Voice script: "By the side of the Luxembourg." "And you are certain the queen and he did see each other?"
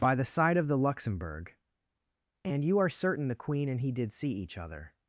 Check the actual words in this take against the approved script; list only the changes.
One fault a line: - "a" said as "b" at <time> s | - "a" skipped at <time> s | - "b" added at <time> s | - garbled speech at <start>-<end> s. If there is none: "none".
none